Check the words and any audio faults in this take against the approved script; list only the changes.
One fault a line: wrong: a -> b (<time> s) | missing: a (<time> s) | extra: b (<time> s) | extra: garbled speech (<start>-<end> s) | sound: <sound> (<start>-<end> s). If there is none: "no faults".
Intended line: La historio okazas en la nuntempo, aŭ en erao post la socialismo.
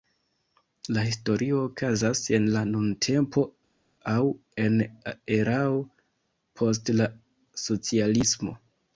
no faults